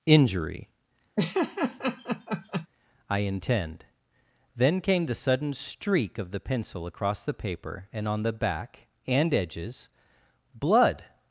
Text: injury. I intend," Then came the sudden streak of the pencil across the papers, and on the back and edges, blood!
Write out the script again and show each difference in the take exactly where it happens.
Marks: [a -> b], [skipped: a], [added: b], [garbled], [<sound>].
injury. [laugh] I intend," Then came the sudden streak of the pencil across the [papers, -> paper] and on the back and edges, blood!